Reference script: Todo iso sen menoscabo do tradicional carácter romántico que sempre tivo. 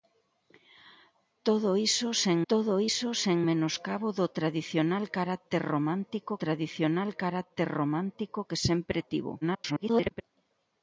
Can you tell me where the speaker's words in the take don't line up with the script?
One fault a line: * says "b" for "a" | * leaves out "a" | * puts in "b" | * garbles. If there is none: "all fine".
* puts in "todo iso sen"
* puts in "tradicional carácter romántico"
* garbles